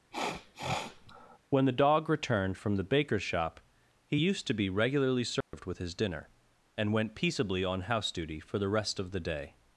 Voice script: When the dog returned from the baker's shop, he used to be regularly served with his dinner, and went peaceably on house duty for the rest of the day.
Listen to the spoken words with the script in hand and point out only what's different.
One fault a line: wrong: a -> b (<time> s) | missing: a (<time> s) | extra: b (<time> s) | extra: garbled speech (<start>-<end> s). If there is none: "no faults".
no faults